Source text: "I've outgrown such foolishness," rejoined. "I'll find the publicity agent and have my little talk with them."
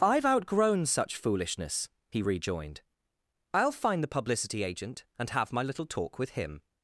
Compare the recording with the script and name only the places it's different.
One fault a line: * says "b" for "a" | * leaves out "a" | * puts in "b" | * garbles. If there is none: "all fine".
* puts in "he"
* says "him" for "them"